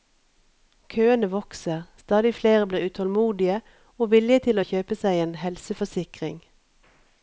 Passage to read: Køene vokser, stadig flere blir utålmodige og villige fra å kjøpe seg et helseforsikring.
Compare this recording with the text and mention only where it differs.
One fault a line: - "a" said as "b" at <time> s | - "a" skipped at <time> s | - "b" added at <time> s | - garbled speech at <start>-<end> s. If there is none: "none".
- "fra" said as "til" at 4.5 s
- "et" said as "en" at 5.2 s